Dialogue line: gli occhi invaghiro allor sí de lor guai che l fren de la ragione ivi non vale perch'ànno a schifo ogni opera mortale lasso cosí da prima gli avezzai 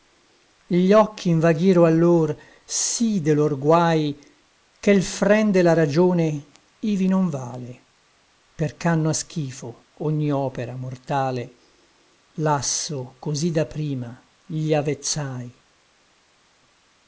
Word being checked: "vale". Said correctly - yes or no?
yes